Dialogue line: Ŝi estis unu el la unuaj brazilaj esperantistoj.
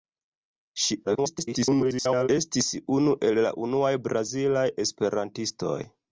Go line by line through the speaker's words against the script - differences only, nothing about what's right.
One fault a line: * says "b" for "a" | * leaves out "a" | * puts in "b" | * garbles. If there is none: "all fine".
* garbles